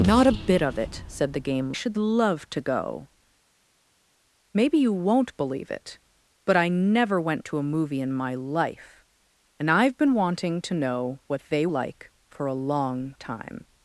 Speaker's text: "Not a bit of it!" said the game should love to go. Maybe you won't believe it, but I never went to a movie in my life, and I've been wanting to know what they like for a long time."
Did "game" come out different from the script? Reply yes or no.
no